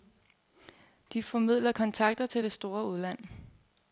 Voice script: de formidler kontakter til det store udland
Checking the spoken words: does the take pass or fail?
pass